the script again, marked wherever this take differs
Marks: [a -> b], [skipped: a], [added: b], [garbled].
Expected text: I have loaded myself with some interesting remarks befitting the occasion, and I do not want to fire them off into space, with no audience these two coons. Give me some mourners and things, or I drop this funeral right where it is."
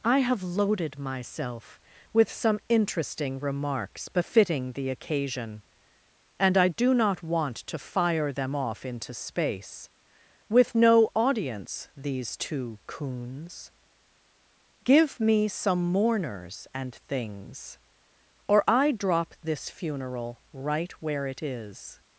I have loaded myself with some interesting remarks befitting the occasion, and I do not want to fire them off into space, with no audience these two coons. Give me some mourners and things, or I drop this funeral right where it is."